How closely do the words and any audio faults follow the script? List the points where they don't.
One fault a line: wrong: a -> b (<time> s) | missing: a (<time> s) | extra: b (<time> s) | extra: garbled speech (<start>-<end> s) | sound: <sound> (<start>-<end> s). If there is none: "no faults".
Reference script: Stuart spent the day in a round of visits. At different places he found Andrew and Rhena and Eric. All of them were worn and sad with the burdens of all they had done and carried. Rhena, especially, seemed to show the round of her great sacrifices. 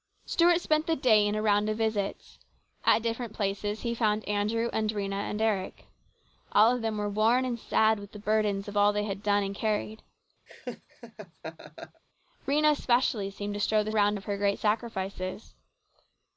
sound: laugh (10.5-12.0 s)